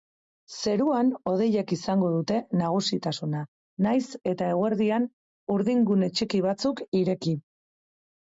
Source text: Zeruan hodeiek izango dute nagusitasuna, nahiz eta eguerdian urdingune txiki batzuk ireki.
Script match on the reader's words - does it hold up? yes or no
yes